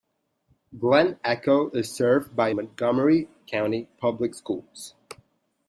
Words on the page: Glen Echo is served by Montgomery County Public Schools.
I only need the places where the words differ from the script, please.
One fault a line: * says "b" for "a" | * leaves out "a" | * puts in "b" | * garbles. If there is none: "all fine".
all fine